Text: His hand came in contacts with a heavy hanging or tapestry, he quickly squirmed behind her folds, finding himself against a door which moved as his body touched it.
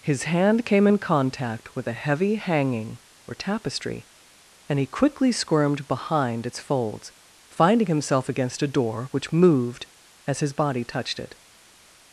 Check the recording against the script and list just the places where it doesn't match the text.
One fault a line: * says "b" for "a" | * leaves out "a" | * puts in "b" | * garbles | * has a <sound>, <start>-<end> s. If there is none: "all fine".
* says "contact" for "contacts"
* puts in "and"
* says "its" for "her"